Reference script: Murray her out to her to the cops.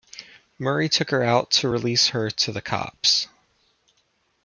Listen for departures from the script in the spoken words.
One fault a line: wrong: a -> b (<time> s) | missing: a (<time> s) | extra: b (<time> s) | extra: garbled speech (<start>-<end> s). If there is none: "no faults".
extra: took (0.9 s)
extra: release (1.7 s)